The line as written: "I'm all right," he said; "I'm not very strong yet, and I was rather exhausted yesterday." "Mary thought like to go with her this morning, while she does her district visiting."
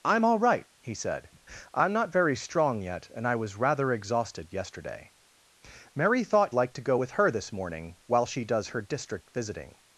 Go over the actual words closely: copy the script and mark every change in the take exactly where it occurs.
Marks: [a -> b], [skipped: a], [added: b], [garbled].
"I'm all right," he said; "I'm not very strong yet, and I was rather exhausted yesterday." "Mary thought like to go with her this morning, while she does her district visiting."